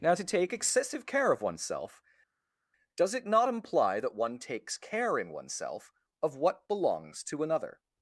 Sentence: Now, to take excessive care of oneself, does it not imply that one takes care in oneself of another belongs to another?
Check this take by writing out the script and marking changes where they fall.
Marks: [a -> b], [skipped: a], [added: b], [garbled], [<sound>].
Now, to take excessive care of oneself, does it not imply that one takes care in oneself of [another -> what] belongs to another?